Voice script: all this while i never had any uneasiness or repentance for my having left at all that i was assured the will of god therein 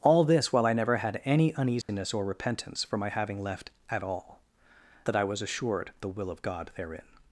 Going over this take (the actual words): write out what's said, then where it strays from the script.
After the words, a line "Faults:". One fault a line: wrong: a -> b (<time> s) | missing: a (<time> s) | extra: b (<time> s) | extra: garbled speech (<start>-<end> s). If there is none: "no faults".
all this while i never had any uneasiness or repentance for my having left at all that i was assured the will of god therein
Faults:
no faults